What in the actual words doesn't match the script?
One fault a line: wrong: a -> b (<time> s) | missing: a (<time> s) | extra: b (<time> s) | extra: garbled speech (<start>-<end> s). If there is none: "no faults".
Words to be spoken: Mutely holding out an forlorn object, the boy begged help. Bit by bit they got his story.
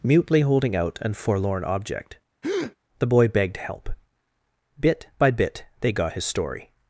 no faults